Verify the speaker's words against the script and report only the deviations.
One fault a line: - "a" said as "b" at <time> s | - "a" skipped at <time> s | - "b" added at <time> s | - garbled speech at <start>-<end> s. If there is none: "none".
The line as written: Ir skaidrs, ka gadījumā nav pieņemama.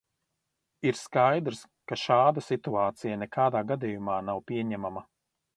- "šāda situācija nekādā" added at 2.0 s